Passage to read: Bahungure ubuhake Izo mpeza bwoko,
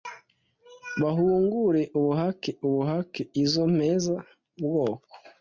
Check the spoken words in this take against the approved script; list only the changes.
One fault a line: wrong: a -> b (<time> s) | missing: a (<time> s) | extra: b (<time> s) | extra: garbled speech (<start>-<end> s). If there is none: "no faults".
extra: ubuhake (2.7 s)